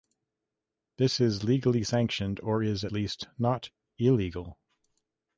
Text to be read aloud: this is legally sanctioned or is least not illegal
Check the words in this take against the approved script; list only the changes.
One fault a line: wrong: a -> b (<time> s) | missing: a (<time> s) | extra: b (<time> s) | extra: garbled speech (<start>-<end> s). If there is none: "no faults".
no faults